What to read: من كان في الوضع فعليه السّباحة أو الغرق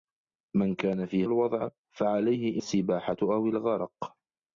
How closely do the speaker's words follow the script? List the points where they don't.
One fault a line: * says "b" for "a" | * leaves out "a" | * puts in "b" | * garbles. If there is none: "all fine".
all fine